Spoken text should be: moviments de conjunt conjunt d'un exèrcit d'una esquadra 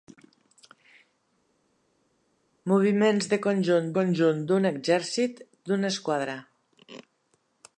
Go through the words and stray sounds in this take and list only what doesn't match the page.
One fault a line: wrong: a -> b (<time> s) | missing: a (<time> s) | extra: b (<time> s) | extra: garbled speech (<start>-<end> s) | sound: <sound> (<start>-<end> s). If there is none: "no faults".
no faults